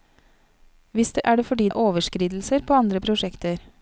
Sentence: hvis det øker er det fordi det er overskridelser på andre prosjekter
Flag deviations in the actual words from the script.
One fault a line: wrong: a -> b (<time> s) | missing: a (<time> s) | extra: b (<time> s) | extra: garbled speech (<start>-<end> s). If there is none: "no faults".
missing: øker (1.2 s)
missing: det (1.7 s)